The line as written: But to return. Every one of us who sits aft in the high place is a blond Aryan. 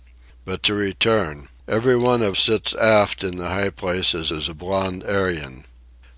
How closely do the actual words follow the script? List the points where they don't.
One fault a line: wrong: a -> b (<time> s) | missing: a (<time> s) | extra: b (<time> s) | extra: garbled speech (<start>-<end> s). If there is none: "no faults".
missing: us who (2.4 s)
extra: is (4.3 s)